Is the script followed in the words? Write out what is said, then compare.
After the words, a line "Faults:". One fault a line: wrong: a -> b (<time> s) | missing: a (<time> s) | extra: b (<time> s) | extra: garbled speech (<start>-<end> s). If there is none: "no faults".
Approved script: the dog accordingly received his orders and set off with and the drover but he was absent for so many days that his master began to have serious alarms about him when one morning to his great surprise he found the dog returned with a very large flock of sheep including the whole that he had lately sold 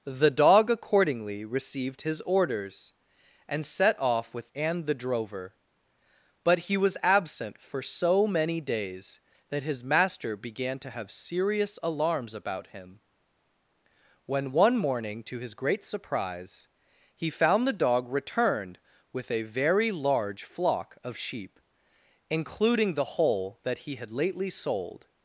the dog accordingly received his orders and set off with and the drover but he was absent for so many days that his master began to have serious alarms about him when one morning to his great surprise he found the dog returned with a very large flock of sheep including the whole that he had lately sold
Faults:
no faults